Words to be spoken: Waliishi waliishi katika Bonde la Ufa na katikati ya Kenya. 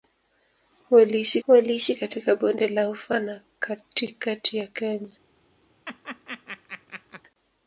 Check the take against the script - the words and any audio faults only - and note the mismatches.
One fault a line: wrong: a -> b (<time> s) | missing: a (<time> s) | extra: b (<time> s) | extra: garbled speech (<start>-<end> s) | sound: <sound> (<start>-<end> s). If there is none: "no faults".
sound: laugh (5.9-7.2 s)